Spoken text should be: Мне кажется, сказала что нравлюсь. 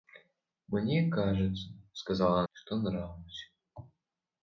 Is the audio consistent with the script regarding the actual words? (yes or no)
yes